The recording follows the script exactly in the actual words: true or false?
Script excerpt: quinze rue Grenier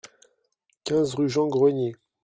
false